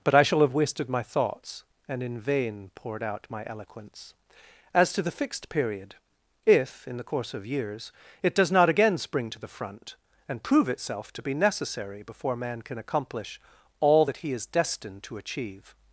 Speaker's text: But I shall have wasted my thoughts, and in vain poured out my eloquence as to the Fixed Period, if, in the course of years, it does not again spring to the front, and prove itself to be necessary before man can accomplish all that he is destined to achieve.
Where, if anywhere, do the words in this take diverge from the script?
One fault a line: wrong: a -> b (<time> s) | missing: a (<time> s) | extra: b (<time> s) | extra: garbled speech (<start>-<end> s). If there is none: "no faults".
no faults